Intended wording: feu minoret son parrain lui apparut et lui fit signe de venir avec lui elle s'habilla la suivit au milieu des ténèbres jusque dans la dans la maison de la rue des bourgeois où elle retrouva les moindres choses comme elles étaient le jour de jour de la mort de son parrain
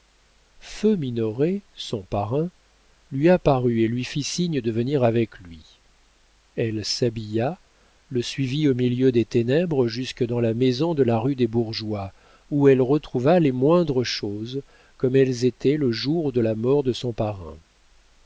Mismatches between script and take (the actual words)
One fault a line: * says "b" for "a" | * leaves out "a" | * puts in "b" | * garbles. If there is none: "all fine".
* says "le" for "la"
* leaves out "dans la"
* leaves out "jour de"